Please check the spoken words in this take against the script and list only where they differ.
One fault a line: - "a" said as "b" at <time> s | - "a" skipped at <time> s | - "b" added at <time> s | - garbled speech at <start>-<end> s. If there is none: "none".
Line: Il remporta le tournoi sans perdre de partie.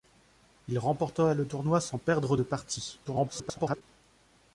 - garbled speech at 3.0-3.8 s